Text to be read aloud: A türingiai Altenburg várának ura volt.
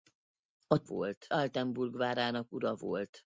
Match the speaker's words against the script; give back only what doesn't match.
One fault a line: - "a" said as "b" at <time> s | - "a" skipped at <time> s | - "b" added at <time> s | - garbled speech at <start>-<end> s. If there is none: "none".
- "türingiai" said as "volt" at 0.8 s